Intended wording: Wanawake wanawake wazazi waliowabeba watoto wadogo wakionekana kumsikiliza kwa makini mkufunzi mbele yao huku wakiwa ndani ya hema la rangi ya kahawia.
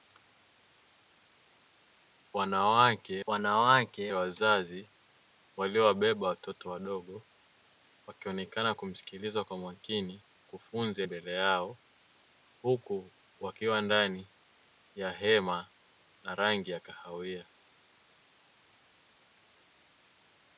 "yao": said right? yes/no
yes